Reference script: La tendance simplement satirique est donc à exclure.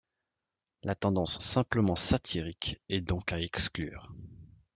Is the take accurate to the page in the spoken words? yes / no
yes